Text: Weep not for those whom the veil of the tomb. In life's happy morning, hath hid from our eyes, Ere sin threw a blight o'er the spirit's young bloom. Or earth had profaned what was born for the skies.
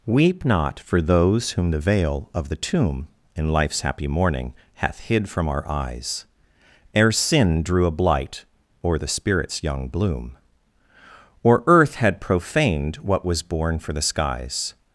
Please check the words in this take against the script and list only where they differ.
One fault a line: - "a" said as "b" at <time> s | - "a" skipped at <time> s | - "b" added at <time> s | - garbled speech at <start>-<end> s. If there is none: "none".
- "threw" said as "drew" at 7.6 s